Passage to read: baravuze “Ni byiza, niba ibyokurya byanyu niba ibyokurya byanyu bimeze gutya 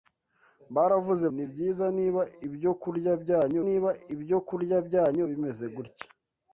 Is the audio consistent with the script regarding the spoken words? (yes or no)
yes